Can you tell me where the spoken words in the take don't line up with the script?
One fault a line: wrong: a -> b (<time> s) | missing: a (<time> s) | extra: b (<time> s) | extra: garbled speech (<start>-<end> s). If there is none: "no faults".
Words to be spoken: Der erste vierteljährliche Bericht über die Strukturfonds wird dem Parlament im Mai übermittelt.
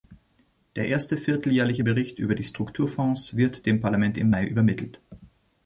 no faults